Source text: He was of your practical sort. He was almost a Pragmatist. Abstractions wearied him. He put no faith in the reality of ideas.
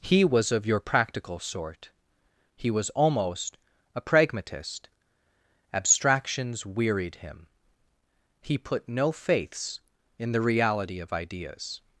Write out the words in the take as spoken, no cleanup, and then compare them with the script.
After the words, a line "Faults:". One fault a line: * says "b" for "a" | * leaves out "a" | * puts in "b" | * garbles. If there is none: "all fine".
He was of your practical sort. He was almost a Pragmatist. Abstractions wearied him. He put no faiths in the reality of ideas.
Faults:
* says "faiths" for "faith"